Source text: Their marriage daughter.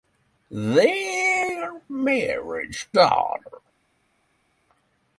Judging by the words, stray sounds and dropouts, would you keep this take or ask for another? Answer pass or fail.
pass